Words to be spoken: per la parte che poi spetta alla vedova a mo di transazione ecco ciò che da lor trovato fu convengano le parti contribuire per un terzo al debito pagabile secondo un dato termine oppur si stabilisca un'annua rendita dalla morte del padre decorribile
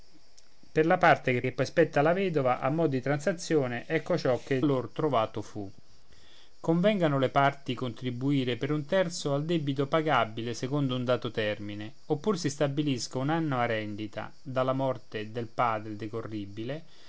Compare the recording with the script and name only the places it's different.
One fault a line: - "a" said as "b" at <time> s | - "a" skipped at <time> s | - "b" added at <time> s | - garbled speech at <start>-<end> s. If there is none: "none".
- "che" added at 1.4 s
- "da" skipped at 4.6 s